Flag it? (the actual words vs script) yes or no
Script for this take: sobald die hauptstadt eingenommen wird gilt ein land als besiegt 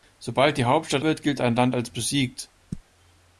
yes